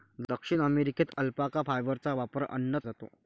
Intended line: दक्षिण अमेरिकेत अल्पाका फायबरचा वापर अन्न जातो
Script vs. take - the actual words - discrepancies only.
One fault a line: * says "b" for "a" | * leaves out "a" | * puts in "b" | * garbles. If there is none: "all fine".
all fine